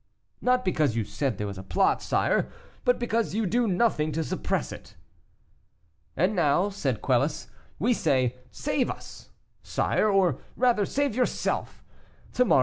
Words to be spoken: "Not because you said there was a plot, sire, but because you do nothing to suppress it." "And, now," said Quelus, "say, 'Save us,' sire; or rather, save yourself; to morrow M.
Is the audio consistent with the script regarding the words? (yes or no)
no